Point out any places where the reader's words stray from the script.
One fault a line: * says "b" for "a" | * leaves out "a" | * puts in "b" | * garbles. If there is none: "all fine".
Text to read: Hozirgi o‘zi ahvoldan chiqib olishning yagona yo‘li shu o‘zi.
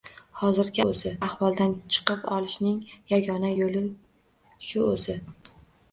all fine